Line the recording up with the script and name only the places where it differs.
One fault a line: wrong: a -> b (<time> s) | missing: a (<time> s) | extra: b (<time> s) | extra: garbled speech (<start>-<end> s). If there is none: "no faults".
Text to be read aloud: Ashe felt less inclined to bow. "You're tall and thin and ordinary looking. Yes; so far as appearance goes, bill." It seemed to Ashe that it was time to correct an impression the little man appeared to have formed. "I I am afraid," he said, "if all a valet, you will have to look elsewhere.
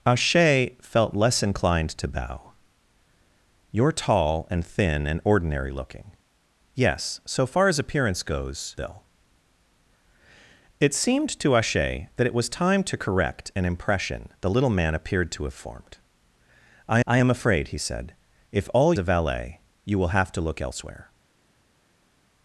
no faults